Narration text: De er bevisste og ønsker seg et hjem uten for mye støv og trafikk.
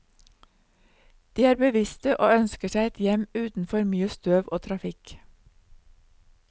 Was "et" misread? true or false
false